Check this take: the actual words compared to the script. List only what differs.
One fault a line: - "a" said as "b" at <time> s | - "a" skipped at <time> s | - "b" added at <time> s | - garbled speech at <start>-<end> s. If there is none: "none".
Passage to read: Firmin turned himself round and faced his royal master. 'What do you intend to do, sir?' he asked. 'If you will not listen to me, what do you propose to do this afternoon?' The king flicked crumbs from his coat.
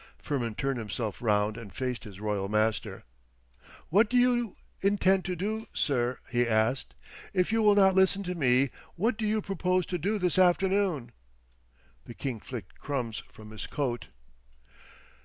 none